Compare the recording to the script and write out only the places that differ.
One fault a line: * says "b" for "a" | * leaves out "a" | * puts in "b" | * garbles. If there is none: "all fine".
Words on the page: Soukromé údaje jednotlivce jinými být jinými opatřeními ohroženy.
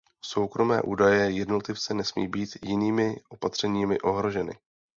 * says "nesmí" for "jinými"